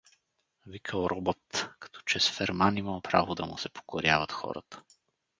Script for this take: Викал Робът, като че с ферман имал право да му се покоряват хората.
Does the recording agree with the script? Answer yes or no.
yes